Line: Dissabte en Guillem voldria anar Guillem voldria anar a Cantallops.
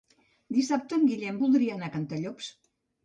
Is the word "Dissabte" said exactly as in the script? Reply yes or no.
yes